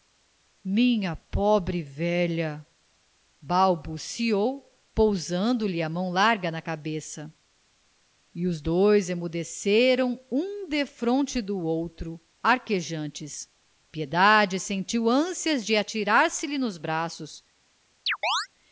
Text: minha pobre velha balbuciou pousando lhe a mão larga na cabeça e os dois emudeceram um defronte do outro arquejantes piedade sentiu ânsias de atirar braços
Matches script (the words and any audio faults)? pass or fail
fail